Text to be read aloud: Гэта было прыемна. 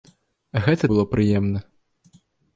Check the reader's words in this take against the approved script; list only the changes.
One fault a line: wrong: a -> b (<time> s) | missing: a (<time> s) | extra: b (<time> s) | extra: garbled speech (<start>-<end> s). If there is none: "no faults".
no faults